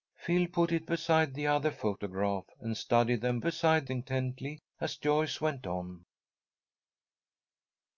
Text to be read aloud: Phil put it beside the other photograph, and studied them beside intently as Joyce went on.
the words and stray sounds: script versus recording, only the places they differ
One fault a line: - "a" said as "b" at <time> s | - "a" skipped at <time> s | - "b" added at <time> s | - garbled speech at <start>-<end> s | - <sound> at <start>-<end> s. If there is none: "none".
none